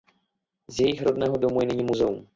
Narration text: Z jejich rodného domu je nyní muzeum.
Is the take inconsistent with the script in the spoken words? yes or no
no